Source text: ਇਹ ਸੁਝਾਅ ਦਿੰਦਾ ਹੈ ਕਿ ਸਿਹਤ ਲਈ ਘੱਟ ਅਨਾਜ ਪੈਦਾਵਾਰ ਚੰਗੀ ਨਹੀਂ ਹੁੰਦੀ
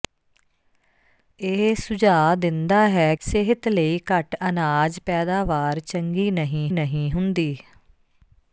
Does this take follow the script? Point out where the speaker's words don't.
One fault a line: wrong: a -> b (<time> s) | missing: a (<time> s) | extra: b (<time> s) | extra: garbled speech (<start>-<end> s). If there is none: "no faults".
missing: ਕਿ (3.1 s)
extra: ਨਹੀਂ (6.7 s)